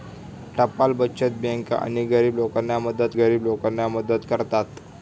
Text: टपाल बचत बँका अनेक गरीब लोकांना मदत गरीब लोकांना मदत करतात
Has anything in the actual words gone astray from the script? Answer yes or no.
no